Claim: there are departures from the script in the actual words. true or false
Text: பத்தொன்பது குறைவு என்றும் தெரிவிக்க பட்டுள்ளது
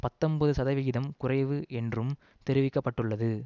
true